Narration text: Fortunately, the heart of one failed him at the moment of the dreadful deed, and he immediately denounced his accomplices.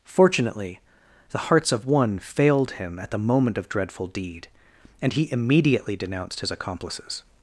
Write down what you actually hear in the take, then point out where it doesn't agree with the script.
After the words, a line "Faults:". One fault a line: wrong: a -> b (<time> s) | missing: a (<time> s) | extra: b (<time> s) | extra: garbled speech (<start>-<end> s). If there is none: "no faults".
Fortunately, the hearts of one failed him at the moment of dreadful deed, and he immediately denounced his accomplices.
Faults:
wrong: heart -> hearts (1.4 s)
missing: the (3.7 s)